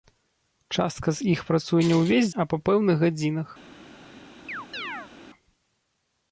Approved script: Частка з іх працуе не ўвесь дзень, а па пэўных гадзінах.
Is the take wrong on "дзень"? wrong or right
wrong